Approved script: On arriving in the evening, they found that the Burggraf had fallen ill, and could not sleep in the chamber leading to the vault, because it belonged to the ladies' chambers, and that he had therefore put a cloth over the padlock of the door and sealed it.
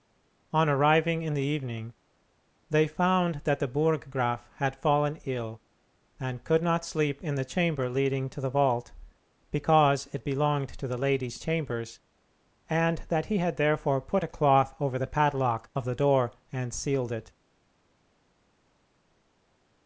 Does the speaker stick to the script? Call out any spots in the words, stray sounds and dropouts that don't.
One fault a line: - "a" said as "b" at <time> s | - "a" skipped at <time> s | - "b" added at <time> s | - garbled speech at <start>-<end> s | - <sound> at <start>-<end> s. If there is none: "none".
none